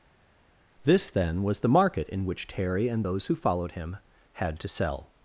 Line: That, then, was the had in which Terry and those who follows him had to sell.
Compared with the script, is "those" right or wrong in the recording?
right